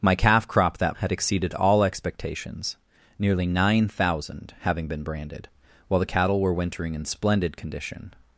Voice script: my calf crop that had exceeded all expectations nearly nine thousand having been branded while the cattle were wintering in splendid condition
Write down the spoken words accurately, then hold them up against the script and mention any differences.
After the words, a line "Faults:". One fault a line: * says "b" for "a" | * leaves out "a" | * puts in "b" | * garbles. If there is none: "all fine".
my calf crop that had exceeded all expectations nearly nine thousand having been branded while the cattle were wintering in splendid condition
Faults:
all fine